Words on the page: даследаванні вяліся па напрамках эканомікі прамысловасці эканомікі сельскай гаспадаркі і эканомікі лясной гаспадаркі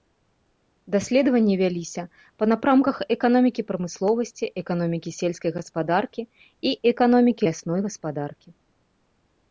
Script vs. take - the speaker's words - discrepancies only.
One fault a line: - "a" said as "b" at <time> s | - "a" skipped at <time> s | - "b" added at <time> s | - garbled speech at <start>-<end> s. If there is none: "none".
none